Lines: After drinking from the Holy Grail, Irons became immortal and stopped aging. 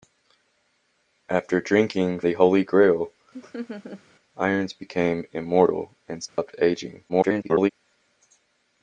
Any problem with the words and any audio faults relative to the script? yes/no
yes